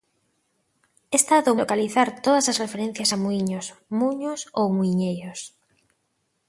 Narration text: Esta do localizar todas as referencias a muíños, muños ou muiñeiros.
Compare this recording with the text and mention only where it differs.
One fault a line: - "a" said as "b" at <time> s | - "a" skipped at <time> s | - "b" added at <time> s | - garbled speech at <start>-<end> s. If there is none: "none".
none